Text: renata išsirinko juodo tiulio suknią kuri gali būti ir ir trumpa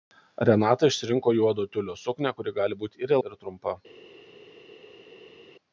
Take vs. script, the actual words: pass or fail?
pass